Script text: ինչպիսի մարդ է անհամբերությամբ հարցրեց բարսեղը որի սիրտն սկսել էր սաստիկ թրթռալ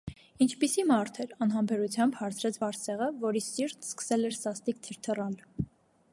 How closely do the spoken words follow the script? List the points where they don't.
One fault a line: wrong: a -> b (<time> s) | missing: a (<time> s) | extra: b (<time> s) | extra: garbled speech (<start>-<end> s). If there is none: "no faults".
wrong: է -> էր (1.2 s)